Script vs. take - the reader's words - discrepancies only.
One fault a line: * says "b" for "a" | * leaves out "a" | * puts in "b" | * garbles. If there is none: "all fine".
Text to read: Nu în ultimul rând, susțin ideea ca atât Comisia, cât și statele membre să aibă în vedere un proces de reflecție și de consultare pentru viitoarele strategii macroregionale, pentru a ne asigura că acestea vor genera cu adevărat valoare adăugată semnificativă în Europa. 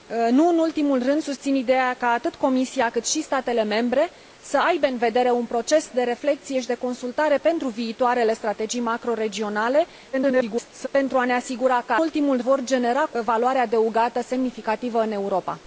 * garbles
* says "ultimul" for "acestea"
* leaves out "adevărat"